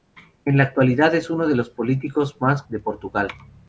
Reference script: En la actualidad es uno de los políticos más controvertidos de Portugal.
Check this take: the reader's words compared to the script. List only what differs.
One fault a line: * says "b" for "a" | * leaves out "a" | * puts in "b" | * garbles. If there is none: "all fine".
* leaves out "controvertidos"